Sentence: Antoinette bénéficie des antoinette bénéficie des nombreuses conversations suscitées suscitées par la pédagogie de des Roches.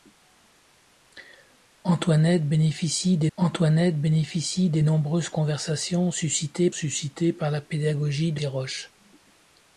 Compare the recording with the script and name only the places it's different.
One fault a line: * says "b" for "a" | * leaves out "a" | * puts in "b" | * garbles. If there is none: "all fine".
all fine